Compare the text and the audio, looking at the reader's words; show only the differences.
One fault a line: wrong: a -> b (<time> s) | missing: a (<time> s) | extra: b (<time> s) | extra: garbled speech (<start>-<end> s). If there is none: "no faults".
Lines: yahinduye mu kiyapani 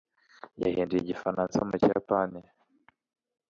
extra: igifaransa (1.0 s)